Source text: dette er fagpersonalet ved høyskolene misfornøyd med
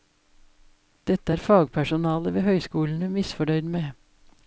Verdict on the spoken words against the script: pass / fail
pass